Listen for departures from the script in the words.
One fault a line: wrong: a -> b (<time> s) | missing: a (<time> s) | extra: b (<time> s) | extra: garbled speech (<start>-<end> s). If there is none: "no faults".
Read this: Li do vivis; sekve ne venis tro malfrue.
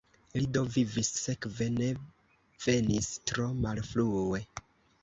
no faults